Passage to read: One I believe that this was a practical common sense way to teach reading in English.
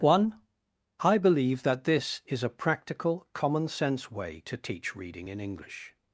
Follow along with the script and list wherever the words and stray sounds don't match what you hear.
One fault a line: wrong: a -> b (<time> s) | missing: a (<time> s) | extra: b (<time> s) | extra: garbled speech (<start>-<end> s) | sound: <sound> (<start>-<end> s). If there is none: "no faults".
wrong: was -> is (2.2 s)